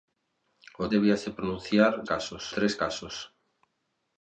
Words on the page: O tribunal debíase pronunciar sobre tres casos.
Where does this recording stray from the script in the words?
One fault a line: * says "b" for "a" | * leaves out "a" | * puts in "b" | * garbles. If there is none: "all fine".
* leaves out "tribunal"
* says "casos" for "sobre"